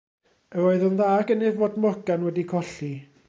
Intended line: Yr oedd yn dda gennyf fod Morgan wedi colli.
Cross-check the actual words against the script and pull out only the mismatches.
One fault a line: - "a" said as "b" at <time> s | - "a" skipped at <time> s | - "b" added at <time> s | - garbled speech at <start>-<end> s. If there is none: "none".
none